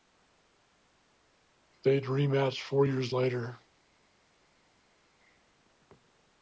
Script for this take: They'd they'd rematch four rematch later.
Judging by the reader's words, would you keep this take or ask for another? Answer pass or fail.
fail